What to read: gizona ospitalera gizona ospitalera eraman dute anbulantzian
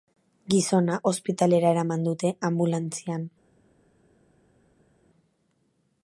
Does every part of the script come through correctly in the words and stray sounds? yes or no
no